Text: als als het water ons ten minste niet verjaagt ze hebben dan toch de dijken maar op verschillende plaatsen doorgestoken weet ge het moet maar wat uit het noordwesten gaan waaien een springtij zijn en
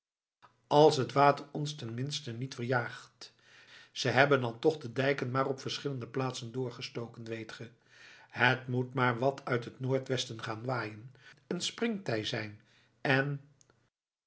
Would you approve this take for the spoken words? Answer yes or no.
no